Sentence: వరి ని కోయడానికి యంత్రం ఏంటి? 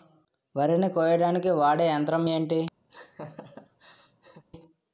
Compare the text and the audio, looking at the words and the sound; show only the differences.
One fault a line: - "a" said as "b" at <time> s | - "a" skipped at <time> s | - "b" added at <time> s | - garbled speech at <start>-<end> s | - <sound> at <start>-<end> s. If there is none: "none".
- "వాడే" added at 1.6 s
- laugh at 2.9-4.4 s